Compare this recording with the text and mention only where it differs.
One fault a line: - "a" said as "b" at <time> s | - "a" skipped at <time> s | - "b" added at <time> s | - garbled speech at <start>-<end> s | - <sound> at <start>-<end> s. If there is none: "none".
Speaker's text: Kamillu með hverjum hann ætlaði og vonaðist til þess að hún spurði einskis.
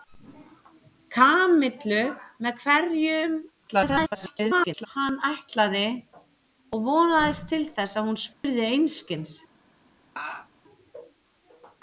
- garbled speech at 3.7-4.9 s
- dropout at 8.3-8.4 s
- laugh at 10.2-10.5 s